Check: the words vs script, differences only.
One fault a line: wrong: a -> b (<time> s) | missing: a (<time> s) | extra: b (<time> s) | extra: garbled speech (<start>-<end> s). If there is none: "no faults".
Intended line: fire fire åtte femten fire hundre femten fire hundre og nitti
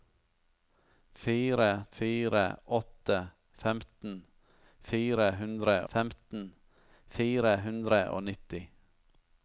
no faults